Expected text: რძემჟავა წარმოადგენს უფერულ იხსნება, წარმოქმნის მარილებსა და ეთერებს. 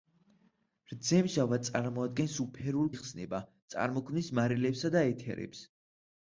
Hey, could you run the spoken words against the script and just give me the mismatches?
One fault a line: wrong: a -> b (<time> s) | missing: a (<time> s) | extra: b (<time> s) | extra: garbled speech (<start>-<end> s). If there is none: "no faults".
no faults